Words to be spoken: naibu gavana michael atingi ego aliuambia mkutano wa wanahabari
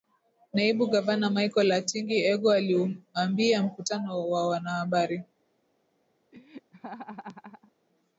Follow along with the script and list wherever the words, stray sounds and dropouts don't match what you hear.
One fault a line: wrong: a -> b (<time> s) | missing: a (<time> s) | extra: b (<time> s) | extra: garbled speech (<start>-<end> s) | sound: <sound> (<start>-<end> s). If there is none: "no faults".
sound: laugh (6.3-7.7 s)